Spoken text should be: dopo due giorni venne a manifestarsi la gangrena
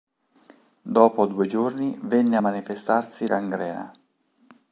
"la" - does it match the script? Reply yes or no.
no